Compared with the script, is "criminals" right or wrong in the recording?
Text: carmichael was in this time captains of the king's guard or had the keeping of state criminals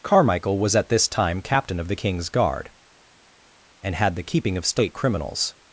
right